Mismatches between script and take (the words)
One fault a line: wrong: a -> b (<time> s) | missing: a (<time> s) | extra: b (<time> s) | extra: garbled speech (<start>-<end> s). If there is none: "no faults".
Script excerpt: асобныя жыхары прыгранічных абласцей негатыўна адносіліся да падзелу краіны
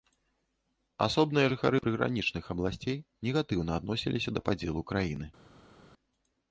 no faults